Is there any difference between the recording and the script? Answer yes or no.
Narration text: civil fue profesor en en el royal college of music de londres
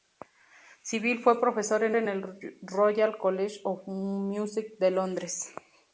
no